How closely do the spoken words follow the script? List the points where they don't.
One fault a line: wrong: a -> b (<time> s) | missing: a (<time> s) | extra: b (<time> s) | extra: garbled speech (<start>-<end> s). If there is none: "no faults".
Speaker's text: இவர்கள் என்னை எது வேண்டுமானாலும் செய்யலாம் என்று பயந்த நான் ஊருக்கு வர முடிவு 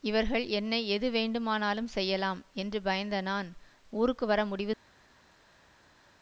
no faults